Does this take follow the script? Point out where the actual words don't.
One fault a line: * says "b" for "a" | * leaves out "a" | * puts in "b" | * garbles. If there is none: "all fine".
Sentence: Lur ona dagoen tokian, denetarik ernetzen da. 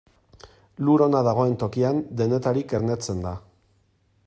all fine